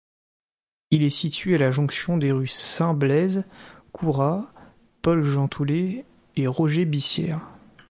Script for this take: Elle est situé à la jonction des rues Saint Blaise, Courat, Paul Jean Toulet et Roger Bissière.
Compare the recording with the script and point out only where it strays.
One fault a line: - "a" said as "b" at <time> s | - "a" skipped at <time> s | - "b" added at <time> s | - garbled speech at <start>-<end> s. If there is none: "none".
- "Elle" said as "Il" at 0.9 s